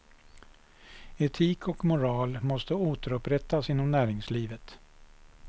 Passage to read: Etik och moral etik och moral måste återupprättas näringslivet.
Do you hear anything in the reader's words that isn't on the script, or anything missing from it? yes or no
yes